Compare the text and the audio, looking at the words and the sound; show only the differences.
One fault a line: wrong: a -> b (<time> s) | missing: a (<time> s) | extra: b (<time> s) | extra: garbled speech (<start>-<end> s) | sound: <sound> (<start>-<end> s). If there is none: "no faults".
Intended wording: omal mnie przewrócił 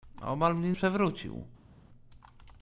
no faults